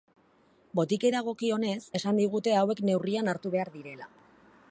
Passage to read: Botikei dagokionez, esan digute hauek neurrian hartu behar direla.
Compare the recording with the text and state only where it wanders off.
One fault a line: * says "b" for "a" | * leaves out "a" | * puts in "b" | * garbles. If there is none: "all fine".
all fine